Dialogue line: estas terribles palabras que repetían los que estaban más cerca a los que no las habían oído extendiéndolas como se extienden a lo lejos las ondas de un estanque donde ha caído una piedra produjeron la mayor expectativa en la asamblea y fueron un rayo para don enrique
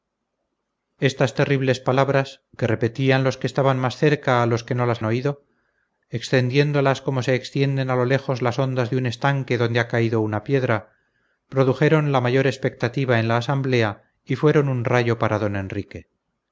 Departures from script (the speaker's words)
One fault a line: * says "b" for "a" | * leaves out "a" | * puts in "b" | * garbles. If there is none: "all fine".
* leaves out "habían"